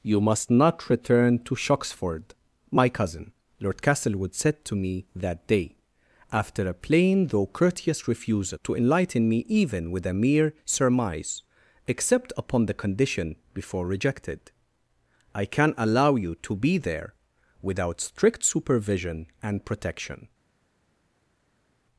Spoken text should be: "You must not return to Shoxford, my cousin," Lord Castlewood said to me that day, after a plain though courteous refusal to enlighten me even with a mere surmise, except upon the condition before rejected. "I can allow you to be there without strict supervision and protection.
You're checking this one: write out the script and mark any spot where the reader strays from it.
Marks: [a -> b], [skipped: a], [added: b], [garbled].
"You must not return to Shoxford, my cousin," Lord Castlewood said to me that day, after a plain though courteous refusal to enlighten me even with a mere surmise, except upon the condition before rejected. "I can allow you to be there without strict supervision and protection.